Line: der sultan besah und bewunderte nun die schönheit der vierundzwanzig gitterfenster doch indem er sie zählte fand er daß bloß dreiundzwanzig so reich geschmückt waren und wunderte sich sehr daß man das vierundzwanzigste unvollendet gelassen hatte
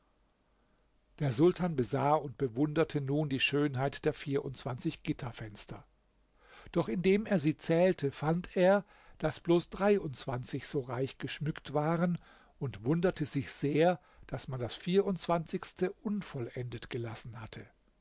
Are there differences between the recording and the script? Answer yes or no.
no